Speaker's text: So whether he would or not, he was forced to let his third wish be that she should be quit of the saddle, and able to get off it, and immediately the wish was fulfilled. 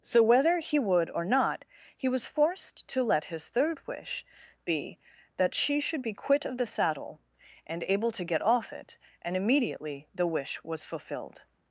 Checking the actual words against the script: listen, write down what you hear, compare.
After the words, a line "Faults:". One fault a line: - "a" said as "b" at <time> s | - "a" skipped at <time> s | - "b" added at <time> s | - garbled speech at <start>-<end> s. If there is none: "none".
So whether he would or not, he was forced to let his third wish be that she should be quit of the saddle, and able to get off it, and immediately the wish was fulfilled.
Faults:
none